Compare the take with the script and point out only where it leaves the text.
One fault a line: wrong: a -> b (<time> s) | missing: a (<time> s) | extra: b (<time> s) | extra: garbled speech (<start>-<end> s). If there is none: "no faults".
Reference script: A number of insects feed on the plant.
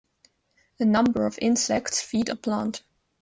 missing: on (2.3 s)